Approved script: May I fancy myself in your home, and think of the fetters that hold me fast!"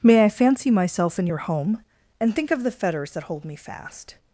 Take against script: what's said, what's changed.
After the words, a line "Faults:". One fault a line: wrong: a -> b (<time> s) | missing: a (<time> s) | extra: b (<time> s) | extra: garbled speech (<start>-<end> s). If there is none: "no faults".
May I fancy myself in your home, and think of the fetters that hold me fast!"
Faults:
no faults